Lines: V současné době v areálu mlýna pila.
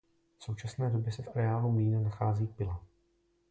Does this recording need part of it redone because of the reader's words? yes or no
yes